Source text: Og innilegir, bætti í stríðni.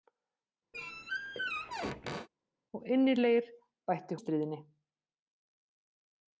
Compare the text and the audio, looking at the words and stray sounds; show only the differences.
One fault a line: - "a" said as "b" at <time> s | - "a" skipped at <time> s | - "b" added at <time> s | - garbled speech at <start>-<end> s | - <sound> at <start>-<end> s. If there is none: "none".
- squeak at 0.7-2.3 s